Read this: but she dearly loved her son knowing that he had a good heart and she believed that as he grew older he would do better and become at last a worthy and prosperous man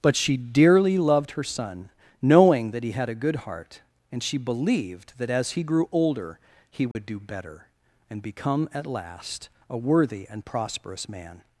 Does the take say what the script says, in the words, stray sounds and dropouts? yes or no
no